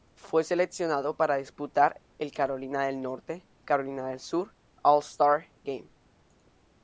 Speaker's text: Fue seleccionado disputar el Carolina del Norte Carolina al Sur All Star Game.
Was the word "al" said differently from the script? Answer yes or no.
yes